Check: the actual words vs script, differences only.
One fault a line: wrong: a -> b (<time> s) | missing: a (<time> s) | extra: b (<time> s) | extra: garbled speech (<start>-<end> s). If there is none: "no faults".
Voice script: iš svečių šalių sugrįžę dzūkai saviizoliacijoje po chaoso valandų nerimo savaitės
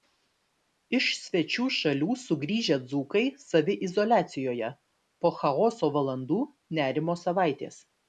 no faults